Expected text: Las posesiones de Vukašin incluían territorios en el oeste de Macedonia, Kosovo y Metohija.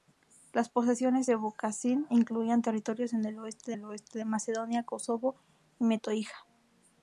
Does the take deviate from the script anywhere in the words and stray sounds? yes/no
yes